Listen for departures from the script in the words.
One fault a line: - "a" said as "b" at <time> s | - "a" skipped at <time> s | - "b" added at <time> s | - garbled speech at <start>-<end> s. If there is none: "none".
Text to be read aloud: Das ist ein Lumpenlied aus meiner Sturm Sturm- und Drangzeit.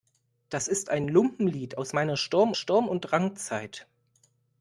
none